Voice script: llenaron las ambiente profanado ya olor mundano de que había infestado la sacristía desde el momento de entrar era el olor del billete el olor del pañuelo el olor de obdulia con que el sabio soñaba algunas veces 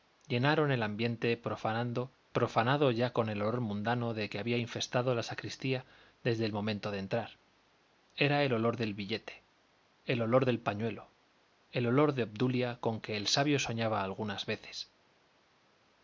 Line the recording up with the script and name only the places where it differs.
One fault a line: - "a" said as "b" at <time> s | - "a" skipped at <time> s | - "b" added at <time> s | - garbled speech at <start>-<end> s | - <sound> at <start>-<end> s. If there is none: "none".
- "las" said as "el" at 0.7 s
- "con el" added at 3.1 s